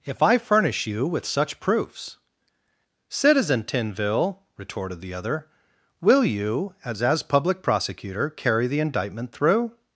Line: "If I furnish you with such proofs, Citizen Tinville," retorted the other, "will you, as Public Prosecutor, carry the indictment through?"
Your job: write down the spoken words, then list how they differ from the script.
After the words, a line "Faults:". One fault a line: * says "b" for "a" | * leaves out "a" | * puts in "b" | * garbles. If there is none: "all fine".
"If I furnish you with such proofs, Citizen Tinville," retorted the other, "will you, as as Public Prosecutor, carry the indictment through?"
Faults:
* puts in "as"